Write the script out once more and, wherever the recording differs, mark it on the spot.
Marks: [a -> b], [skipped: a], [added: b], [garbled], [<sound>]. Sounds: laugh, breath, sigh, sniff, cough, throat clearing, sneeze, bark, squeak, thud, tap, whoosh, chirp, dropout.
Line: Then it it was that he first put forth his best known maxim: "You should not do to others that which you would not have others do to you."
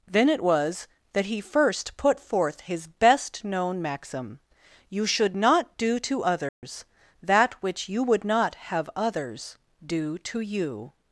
Then it [skipped: it] was that he first put forth his best known maxim: "You should not do to others [dropout] that which you would not have others do to you."